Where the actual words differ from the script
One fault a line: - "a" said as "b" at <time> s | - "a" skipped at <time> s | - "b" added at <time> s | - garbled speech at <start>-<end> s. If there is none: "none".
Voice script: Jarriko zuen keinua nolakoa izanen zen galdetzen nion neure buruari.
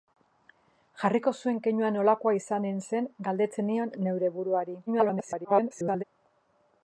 - garbled speech at 4.9-6.0 s